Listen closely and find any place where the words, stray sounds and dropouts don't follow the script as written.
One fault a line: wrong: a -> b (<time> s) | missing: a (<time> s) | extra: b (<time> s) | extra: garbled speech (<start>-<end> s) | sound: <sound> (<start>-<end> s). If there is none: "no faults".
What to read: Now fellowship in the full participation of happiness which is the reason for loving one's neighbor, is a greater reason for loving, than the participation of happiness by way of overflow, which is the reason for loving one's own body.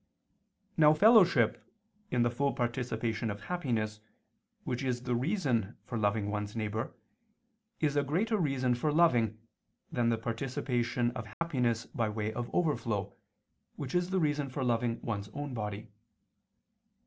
sound: dropout (11.3-11.4 s)